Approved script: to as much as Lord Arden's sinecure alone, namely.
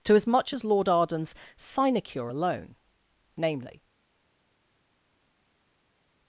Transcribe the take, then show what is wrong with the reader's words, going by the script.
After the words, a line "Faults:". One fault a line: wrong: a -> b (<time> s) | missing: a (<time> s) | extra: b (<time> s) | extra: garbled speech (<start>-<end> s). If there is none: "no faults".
to as much as Lord Arden's sinecure alone, namely.
Faults:
no faults